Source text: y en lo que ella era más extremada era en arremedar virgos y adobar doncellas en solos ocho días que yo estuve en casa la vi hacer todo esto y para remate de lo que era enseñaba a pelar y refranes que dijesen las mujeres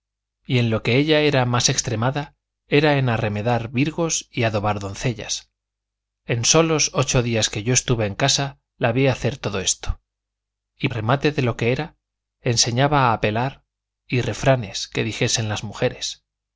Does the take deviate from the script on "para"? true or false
true